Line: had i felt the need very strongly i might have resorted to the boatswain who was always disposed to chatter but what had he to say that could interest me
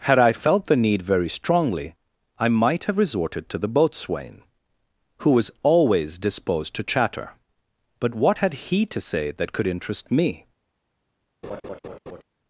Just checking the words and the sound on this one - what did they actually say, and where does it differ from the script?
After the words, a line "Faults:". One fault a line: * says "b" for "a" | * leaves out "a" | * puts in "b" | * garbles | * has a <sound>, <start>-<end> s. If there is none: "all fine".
had i felt the need very strongly i might have resorted to the boatswain who was always disposed to chatter but what had he to say that could interest me
Faults:
* has a laugh, 11.4-12.2 s